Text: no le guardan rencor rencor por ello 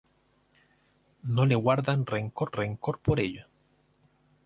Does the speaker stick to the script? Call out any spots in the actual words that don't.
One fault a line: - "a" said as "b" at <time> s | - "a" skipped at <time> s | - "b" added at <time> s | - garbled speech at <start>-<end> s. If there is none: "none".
none